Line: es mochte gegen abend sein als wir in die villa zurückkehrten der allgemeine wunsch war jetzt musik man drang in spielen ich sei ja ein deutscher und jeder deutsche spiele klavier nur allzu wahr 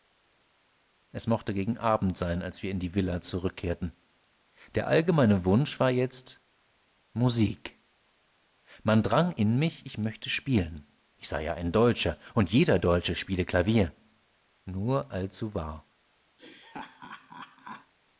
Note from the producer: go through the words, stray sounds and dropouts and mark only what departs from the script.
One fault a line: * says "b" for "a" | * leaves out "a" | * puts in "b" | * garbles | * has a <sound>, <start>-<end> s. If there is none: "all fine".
* puts in "mich ich möchte"
* has a laugh, 16.4-17.9 s